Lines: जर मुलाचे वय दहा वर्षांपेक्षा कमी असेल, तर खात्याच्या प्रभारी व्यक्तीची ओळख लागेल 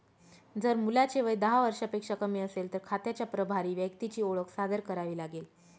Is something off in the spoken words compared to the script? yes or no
yes